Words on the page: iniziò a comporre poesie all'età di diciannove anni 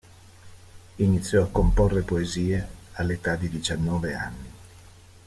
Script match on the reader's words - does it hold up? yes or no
yes